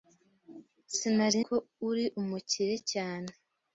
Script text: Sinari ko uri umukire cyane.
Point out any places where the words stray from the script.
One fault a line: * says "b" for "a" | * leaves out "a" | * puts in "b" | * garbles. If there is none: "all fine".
all fine